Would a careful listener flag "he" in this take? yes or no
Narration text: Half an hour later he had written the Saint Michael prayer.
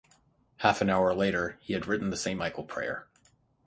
no